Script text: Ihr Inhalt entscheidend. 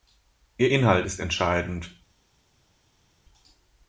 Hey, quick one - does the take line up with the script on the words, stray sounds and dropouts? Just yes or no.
no